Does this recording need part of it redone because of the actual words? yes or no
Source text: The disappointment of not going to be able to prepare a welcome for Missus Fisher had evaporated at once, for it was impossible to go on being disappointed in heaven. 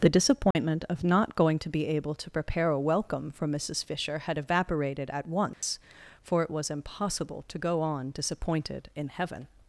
yes